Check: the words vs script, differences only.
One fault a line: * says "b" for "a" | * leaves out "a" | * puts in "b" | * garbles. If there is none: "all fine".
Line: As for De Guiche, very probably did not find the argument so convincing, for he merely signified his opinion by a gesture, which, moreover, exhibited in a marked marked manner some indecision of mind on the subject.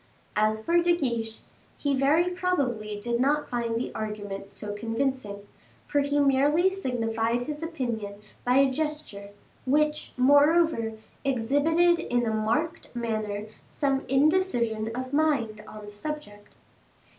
* puts in "he"
* leaves out "marked"